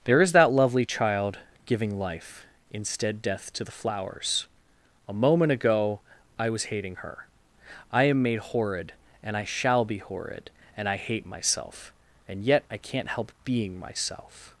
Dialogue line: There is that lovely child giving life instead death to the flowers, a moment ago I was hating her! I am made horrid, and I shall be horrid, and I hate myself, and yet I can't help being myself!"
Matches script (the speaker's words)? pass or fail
pass